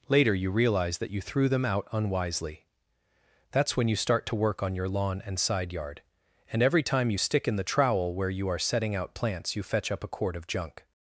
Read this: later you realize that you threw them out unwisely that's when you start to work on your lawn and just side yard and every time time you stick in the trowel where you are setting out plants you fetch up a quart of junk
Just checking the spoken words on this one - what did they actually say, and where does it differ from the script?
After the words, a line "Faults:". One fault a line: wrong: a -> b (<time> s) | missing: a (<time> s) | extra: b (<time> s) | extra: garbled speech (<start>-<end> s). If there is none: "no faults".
later you realize that you threw them out unwisely that's when you start to work on your lawn and side yard and every time you stick in the trowel where you are setting out plants you fetch up a quart of junk
Faults:
missing: just (5.4 s)
missing: time (7.1 s)